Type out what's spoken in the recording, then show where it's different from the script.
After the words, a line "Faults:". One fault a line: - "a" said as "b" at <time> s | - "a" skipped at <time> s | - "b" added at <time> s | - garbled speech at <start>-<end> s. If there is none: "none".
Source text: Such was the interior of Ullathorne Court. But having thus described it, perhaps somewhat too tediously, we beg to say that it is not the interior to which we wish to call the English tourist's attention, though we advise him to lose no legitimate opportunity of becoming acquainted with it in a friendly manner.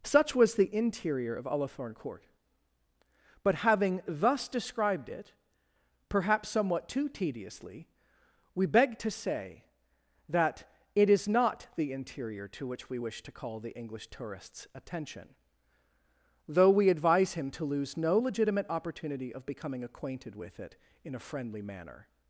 Such was the interior of Ullathorne Court. But having thus described it, perhaps somewhat too tediously, we beg to say that it is not the interior to which we wish to call the English tourist's attention, though we advise him to lose no legitimate opportunity of becoming acquainted with it in a friendly manner.
Faults:
none